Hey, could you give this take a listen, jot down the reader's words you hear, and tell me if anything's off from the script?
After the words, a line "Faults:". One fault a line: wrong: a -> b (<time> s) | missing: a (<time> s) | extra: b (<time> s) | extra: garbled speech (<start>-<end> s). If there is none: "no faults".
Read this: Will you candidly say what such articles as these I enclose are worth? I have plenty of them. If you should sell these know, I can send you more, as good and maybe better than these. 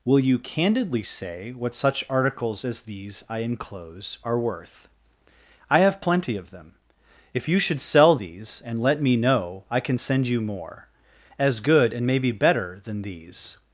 Will you candidly say what such articles as these I enclose are worth? I have plenty of them. If you should sell these and let me know, I can send you more, as good and maybe better than these.
Faults:
extra: and let me (8.6 s)